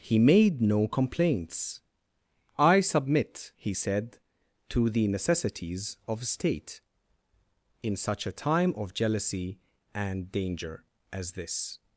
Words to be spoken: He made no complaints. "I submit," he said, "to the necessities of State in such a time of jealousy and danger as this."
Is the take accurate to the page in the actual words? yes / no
yes